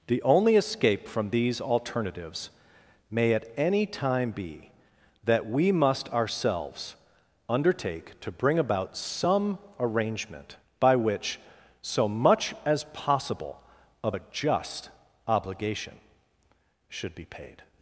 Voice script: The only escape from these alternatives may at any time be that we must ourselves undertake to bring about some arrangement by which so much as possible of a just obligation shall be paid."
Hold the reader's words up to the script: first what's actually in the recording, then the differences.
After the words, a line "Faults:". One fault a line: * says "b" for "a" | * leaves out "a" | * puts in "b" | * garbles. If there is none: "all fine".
The only escape from these alternatives may at any time be that we must ourselves undertake to bring about some arrangement by which so much as possible of a just obligation should be paid."
Faults:
* says "should" for "shall"